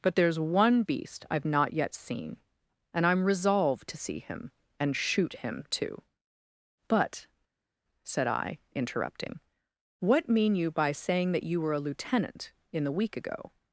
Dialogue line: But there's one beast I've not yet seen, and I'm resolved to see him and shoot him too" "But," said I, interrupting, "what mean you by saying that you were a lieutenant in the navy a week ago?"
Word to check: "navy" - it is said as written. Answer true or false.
false